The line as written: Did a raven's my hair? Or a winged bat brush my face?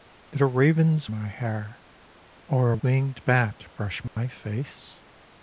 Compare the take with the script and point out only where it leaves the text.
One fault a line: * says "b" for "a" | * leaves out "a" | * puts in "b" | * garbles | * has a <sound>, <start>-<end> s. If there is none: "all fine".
* has a dropout, 4.1-4.2 s